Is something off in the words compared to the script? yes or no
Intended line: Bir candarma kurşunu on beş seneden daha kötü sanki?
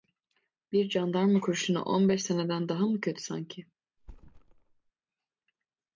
yes